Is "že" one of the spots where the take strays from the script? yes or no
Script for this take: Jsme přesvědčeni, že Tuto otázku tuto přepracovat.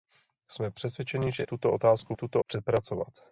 no